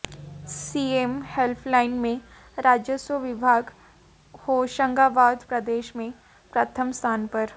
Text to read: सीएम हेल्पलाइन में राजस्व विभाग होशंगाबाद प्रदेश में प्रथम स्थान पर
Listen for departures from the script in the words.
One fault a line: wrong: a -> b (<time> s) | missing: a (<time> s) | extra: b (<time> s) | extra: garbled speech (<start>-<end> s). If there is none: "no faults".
no faults